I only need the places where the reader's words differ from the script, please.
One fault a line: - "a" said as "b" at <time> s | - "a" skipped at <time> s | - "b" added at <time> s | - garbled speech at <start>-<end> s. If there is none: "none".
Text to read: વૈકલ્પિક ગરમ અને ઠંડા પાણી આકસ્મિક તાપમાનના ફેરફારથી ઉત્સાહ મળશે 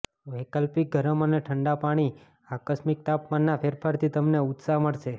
- "તમને" added at 4.1 s